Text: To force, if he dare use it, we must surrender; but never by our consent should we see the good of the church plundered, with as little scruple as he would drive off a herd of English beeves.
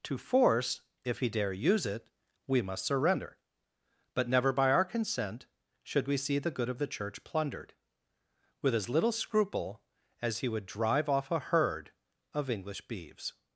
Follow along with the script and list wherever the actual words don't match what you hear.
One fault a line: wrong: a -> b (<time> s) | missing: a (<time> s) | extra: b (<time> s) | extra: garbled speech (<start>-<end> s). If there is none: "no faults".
no faults